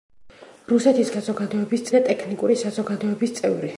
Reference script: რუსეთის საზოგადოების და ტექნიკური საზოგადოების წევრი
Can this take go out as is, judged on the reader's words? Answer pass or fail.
pass